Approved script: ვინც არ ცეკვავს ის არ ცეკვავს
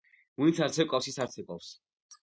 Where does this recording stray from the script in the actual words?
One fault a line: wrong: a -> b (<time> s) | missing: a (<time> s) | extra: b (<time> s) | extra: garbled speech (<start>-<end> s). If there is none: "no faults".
no faults